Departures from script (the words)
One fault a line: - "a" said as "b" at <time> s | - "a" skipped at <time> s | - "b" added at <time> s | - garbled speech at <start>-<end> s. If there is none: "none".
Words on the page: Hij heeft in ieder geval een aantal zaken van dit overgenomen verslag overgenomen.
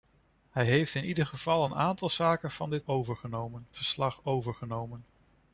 none